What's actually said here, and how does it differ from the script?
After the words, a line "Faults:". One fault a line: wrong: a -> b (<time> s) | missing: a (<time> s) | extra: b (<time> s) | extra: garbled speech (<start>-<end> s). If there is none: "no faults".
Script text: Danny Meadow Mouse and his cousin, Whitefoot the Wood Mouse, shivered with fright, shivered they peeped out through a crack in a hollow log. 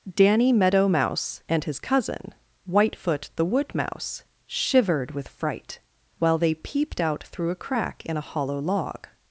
Danny Meadow Mouse and his cousin, Whitefoot the Wood Mouse, shivered with fright, while they peeped out through a crack in a hollow log.
Faults:
wrong: shivered -> while (6.2 s)